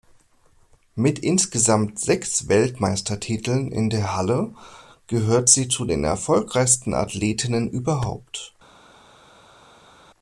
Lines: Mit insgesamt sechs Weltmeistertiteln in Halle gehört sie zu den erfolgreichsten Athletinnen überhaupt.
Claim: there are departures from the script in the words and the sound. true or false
true